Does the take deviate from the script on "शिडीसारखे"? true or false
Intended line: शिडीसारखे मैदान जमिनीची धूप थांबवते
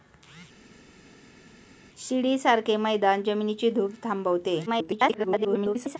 false